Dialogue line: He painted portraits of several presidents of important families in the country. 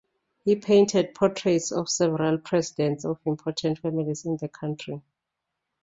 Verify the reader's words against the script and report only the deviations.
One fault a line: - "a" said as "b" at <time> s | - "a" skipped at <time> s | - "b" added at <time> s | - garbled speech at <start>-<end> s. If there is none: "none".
none